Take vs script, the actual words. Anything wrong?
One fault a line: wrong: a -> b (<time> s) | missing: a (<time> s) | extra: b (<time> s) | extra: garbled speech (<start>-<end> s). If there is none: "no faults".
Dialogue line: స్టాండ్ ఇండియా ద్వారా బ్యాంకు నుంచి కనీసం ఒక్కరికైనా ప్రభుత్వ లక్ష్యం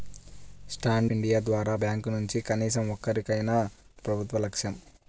no faults